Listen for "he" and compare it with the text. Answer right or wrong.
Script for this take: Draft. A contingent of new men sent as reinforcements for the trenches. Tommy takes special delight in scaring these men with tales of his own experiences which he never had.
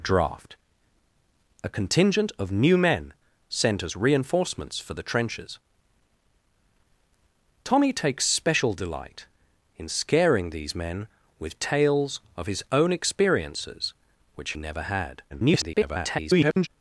wrong